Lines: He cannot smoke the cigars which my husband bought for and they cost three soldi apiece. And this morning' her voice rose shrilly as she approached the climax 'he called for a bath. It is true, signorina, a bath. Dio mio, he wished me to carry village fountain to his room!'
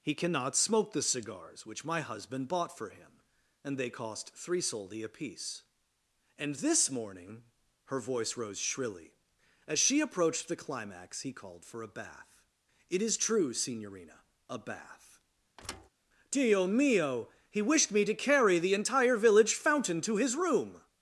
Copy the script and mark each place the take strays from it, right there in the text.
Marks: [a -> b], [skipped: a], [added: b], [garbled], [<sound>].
He cannot smoke the cigars which my husband bought for [added: him] and they cost three soldi apiece. And this morning' her voice rose shrilly as she approached the climax 'he called for a bath. It is true, signorina, a bath. [thud] Dio mio, he wished me to carry [added: the entire] village fountain to his room!'